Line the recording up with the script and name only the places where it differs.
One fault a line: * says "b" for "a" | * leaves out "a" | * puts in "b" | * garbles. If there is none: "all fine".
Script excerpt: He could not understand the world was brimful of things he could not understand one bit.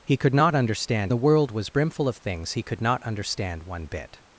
all fine